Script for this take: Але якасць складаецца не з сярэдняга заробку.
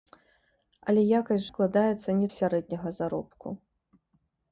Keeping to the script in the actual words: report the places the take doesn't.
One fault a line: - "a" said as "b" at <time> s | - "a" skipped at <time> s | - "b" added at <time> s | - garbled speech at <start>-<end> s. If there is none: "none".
none